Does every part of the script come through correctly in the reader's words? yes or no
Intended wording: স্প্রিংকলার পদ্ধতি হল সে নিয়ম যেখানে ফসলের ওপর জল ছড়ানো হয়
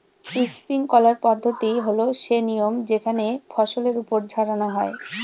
no